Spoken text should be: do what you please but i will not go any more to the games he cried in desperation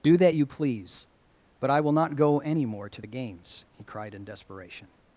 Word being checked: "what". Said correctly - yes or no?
no